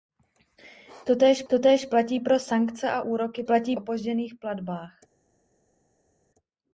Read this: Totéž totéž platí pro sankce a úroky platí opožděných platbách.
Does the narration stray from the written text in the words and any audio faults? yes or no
no